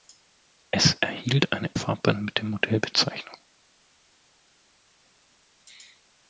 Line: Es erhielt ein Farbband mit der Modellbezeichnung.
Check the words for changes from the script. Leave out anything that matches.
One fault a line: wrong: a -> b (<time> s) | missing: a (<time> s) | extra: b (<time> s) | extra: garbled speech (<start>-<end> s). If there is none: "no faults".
no faults